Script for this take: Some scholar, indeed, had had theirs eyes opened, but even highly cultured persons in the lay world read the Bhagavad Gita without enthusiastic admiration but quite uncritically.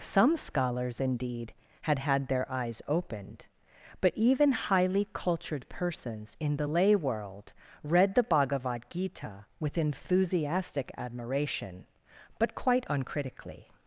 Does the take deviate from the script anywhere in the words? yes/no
yes